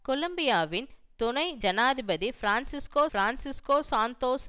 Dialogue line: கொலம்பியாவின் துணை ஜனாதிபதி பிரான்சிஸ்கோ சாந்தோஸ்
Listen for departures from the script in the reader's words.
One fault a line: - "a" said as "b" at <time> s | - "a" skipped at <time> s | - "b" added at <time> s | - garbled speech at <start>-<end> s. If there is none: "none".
- "பிரான்சிஸ்கோ" added at 3.1 s